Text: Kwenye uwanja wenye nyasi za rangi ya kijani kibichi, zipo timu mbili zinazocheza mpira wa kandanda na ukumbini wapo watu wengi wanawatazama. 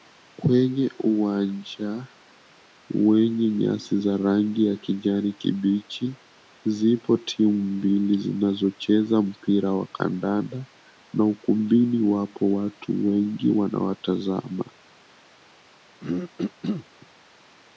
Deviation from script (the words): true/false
false